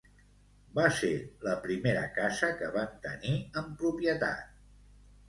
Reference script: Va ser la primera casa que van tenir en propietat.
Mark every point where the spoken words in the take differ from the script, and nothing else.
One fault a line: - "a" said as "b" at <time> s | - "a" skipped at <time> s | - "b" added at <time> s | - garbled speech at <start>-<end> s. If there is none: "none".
none